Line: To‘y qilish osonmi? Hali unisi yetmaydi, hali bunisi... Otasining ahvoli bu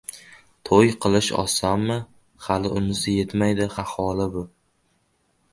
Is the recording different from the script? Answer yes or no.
yes